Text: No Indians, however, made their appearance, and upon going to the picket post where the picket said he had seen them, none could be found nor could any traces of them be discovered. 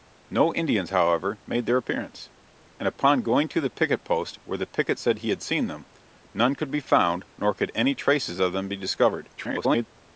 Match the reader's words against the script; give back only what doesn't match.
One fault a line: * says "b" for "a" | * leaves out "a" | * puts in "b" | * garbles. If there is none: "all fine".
* garbles